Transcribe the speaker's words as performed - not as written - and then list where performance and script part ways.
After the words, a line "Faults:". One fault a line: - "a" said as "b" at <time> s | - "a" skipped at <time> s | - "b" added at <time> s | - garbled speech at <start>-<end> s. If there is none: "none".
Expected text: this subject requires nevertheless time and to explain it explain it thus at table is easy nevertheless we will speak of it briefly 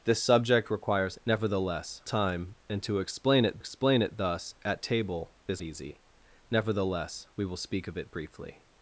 this subject requires nevertheless time and to explain it explain it thus at table is easy nevertheless we will speak of it briefly
Faults:
none